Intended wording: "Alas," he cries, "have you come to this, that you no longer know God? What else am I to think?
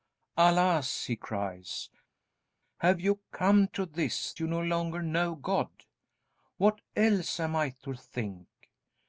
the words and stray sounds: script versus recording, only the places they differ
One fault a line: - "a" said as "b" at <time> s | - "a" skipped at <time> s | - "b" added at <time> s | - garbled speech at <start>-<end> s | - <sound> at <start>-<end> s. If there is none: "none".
- "that" skipped at 4.3 s